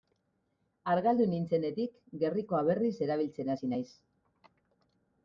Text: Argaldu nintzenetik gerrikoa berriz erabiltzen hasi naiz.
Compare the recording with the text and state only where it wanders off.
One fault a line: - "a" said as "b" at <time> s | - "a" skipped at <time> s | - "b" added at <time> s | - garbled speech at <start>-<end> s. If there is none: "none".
none